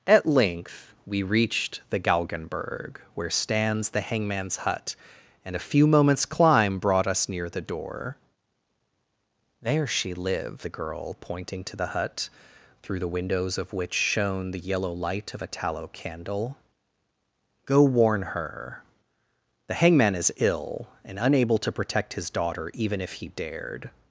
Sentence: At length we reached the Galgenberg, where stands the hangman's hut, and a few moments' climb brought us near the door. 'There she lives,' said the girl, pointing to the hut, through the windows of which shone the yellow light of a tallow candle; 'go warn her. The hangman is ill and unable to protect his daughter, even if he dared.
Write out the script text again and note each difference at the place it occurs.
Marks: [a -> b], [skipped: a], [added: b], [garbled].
At length we reached the Galgenberg, where stands the hangman's hut, and a few moments' climb brought us near the door. 'There she lives,' [skipped: said] the girl, pointing to the hut, through the windows of which shone the yellow light of a tallow candle; 'go warn her. The hangman is ill and unable to protect his daughter, even if he dared.